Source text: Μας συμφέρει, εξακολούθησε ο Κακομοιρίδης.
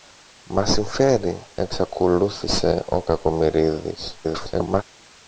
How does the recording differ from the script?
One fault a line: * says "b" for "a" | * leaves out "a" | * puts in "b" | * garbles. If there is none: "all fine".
* garbles